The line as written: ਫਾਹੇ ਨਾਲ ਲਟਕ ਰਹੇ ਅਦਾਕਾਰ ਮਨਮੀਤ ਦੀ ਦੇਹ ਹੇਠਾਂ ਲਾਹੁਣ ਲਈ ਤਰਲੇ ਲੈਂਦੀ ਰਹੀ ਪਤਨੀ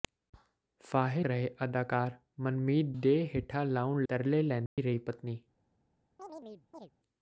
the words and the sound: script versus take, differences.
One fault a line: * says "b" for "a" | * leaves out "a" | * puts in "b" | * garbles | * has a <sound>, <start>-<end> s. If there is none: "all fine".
* leaves out "ਨਾਲ ਲਟਕ"
* leaves out "ਦੀ"
* leaves out "ਲਈ"
* has a dropout, 4.7-4.8 s
* has a chirp, 6.2-6.9 s